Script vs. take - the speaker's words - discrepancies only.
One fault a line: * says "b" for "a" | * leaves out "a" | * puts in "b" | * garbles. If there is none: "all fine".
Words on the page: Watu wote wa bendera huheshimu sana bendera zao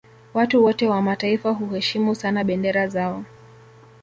* says "mataifa" for "bendera"